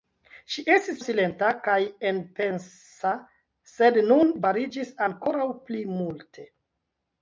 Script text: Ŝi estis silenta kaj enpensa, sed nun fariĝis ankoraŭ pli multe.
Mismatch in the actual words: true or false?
false